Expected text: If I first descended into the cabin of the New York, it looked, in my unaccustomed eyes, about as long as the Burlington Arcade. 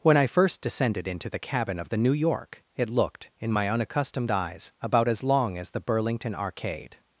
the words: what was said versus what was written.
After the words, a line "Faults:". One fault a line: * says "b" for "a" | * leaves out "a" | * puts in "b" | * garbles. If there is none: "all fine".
When I first descended into the cabin of the New York, it looked, in my unaccustomed eyes, about as long as the Burlington Arcade.
Faults:
* says "When" for "If"